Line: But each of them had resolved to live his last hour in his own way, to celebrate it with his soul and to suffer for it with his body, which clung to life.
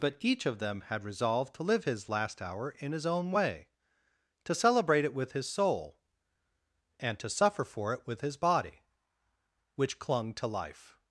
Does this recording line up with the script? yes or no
yes